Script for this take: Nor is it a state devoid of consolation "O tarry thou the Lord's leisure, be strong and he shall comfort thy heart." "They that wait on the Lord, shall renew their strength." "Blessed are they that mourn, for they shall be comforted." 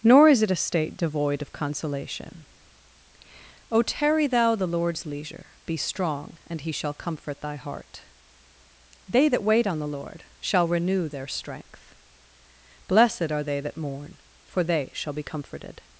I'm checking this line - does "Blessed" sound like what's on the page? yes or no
yes